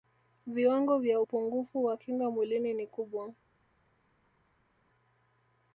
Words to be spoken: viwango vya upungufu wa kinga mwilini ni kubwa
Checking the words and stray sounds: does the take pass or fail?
pass